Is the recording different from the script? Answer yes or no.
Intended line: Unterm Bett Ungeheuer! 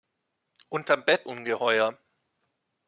no